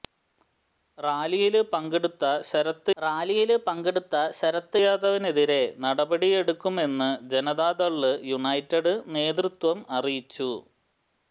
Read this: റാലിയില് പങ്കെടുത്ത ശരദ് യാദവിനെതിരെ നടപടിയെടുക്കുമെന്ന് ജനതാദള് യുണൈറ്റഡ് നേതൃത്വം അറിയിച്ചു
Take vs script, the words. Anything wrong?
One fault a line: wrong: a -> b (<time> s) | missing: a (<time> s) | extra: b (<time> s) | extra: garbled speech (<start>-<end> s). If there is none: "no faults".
extra: റാലിയില് പങ്കെടുത്ത ശരദ് (3.0 s)